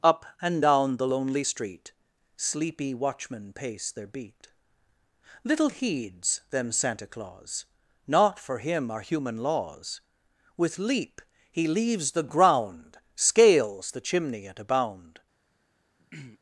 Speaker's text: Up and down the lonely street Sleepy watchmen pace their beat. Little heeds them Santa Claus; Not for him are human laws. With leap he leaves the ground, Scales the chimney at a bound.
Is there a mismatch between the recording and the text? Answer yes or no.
no